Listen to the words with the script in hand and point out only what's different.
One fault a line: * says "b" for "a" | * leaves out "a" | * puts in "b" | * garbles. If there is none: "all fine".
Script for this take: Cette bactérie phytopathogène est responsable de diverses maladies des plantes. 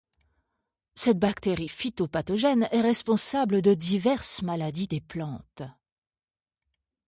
all fine